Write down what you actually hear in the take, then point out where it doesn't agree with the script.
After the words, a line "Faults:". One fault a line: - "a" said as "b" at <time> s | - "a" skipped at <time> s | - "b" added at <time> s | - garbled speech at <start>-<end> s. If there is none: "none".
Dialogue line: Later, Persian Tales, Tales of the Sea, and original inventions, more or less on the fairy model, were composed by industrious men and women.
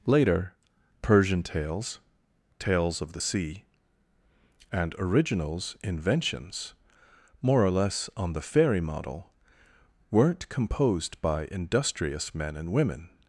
Later, Persian Tales, Tales of the Sea, and originals inventions, more or less on the fairy model, weren't composed by industrious men and women.
Faults:
- "original" said as "originals" at 5.0 s
- "were" said as "weren't" at 10.1 s